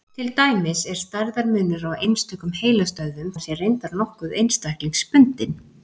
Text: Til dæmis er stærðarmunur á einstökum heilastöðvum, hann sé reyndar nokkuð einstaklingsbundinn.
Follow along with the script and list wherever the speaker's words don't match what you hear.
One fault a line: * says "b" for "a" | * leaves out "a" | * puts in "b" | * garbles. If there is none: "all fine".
all fine